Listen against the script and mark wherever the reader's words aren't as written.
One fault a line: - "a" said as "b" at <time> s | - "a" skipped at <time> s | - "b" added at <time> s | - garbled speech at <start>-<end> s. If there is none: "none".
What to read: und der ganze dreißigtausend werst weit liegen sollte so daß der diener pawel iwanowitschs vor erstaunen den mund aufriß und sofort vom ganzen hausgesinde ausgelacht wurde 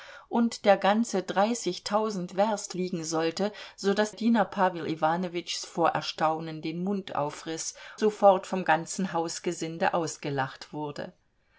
- "weit" skipped at 2.8 s
- "der" skipped at 4.1 s
- "und" skipped at 7.8 s